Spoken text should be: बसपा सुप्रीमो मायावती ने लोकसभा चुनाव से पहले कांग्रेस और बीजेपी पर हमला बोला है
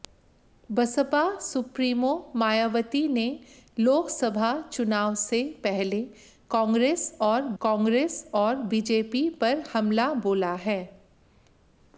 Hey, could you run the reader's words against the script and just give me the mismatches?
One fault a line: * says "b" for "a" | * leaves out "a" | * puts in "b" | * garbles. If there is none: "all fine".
* puts in "कांग्रेस और"